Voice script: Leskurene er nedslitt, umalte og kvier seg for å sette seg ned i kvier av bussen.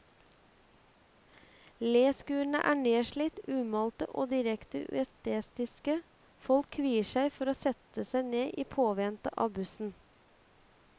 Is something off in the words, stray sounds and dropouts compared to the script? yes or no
yes